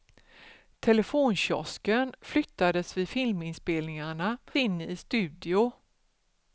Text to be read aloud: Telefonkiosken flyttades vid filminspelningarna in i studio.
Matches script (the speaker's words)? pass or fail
pass